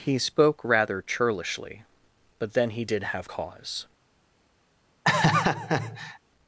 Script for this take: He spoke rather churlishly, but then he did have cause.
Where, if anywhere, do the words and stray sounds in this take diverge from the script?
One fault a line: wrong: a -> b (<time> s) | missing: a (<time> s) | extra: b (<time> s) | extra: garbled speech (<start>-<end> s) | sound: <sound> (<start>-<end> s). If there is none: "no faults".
sound: laugh (5.0-6.2 s)